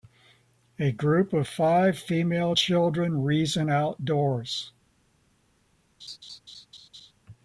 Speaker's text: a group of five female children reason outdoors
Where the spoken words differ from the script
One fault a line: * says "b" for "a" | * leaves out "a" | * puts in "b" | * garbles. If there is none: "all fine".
all fine